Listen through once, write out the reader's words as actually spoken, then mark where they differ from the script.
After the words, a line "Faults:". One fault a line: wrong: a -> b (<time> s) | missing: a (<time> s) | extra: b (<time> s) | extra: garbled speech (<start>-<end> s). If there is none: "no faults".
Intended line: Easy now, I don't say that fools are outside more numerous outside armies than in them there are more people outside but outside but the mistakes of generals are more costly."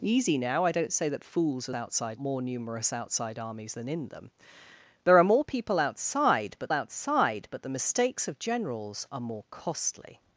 Easy now, I don't say that fools are outside more numerous outside armies than in them there are more people outside but outside but the mistakes of generals are more costly."
Faults:
no faults